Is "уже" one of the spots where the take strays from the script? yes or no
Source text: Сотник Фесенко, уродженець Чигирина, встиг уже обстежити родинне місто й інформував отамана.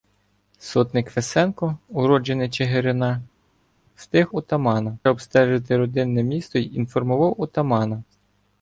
yes